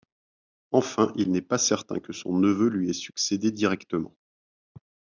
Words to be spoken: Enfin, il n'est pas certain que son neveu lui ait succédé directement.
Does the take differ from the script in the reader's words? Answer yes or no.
no